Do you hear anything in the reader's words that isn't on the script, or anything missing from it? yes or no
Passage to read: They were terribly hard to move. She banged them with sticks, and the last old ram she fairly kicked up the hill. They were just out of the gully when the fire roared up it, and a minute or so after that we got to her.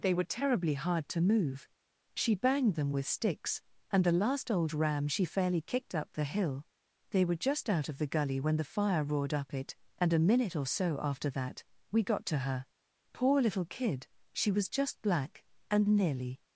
yes